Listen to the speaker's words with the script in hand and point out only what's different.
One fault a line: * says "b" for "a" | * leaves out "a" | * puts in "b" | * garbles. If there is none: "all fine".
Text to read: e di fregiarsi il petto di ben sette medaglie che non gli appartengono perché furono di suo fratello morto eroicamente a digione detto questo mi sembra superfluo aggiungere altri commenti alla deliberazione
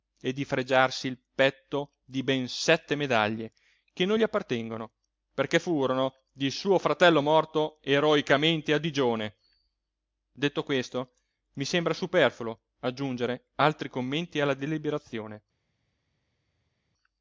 all fine